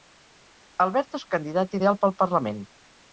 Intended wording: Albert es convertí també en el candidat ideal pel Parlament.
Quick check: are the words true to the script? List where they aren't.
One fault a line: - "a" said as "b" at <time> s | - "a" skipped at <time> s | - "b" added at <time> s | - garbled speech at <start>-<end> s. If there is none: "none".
- "convertí també en" skipped at 1.3 s